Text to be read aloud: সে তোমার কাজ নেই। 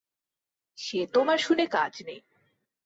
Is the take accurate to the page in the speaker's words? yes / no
no